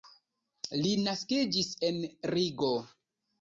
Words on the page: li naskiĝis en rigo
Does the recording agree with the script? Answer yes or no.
yes